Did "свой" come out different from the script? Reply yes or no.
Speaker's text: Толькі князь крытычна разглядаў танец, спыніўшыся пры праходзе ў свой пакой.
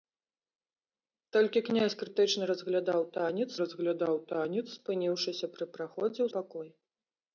yes